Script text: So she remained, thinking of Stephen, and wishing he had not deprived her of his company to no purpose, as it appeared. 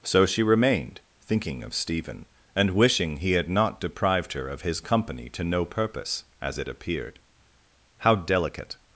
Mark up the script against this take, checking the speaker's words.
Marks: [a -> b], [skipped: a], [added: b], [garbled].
So she remained, thinking of Stephen, and wishing he had not deprived her of his company to no purpose, as it appeared. [added: How delicate]